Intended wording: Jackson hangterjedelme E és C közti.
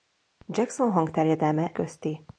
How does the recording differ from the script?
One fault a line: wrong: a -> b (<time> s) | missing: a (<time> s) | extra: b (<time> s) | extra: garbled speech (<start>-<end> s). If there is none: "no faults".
missing: E és C (1.7 s)